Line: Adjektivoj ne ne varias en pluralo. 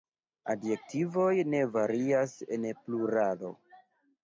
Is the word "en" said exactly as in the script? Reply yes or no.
yes